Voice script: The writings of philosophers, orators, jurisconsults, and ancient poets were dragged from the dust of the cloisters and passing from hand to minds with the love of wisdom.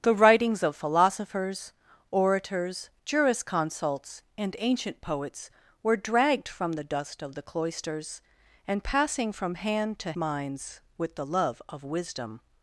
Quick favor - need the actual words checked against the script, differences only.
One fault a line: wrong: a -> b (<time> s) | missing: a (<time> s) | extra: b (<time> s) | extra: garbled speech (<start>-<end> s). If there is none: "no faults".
no faults